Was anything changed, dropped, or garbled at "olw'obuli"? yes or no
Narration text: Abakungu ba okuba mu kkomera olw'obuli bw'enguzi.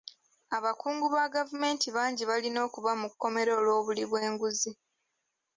no